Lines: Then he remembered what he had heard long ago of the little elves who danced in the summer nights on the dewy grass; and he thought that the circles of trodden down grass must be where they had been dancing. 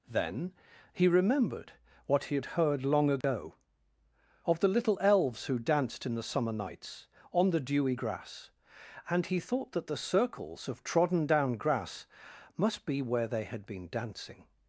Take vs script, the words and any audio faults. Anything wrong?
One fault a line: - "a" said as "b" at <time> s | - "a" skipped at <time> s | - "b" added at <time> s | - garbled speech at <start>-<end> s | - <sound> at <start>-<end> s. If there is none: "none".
- dropout at 3.2-3.2 s